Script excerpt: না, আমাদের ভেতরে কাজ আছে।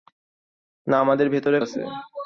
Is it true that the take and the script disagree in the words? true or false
true